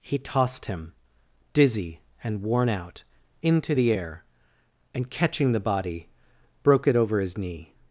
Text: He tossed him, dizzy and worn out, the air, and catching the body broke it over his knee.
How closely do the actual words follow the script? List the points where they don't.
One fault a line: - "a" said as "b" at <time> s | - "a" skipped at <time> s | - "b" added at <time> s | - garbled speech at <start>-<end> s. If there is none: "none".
- "into" added at 3.4 s